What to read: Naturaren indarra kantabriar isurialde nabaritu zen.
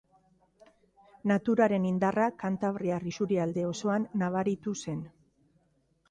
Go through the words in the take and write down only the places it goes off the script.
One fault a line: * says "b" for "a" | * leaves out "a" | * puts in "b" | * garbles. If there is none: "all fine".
* puts in "osoan"